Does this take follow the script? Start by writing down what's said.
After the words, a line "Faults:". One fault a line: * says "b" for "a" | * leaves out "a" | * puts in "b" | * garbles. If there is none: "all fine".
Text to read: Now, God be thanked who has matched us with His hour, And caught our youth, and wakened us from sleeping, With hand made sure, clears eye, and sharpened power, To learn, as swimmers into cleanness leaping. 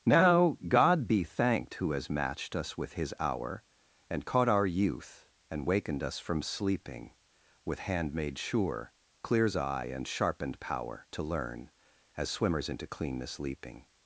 Now, God be thanked who has matched us with His hour, And caught our youth, and wakened us from sleeping, With hand made sure, clears eye, and sharpened power, To learn, as swimmers into cleanness leaping.
Faults:
all fine